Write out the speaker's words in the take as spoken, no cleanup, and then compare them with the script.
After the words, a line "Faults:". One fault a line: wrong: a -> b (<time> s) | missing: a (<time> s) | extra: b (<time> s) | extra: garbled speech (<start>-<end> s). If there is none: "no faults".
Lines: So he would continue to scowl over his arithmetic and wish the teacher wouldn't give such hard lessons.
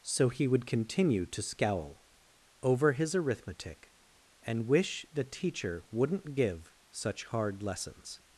So he would continue to scowl over his arithmetic and wish the teacher wouldn't give such hard lessons.
Faults:
no faults